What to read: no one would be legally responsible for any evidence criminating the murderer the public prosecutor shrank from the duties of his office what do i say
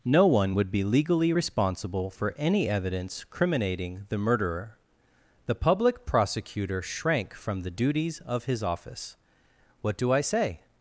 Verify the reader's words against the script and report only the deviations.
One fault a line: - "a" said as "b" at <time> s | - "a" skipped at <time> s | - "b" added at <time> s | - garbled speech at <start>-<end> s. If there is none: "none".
none